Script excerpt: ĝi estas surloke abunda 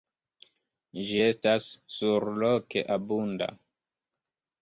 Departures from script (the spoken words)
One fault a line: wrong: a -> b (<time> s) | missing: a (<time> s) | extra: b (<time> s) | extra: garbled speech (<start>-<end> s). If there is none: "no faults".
no faults